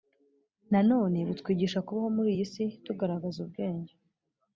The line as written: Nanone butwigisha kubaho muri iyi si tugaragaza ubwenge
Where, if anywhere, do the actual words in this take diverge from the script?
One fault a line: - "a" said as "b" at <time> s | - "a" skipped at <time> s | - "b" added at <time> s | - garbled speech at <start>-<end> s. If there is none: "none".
none